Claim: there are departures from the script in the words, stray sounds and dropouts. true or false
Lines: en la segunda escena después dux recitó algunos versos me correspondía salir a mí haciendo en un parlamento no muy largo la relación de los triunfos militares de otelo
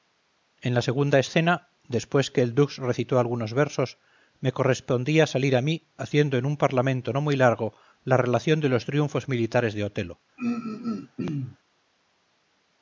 true